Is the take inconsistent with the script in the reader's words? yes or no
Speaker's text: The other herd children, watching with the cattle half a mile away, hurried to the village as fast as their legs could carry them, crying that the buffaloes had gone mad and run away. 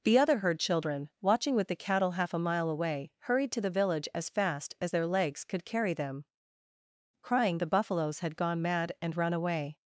yes